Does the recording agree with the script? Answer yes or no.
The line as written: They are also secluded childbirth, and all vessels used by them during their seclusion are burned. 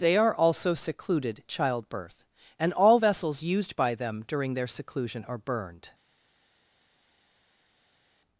yes